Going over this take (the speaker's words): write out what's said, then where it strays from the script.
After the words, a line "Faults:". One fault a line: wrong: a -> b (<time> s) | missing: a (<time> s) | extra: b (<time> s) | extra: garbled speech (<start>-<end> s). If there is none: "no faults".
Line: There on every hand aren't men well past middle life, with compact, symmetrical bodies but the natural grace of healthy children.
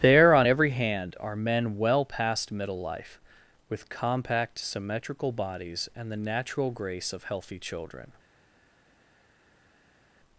There on every hand are men well past middle life, with compact, symmetrical bodies and the natural grace of healthy children.
Faults:
wrong: aren't -> are (1.2 s)
wrong: but -> and (6.0 s)